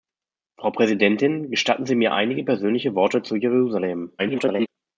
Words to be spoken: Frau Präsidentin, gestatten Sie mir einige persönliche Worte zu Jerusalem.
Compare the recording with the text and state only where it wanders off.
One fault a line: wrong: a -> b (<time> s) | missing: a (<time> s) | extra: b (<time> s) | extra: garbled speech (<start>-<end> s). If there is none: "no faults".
extra: garbled speech (4.2-4.7 s)